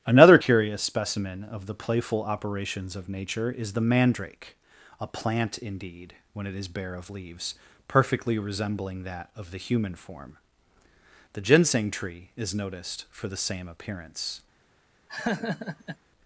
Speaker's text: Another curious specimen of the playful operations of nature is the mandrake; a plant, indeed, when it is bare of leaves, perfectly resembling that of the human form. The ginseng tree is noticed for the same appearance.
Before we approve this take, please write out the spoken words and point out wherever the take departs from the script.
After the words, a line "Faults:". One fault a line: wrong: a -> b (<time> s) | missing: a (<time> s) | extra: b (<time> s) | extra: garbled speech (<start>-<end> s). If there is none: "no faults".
Another curious specimen of the playful operations of nature is the mandrake; a plant, indeed, when it is bare of leaves, perfectly resembling that of the human form. The ginseng tree is noticed for the same appearance.
Faults:
no faults